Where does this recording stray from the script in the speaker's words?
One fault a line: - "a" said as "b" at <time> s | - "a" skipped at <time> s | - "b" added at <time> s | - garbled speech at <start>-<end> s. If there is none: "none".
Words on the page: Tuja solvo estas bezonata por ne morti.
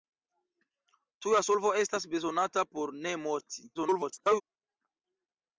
- garbled speech at 3.7-4.4 s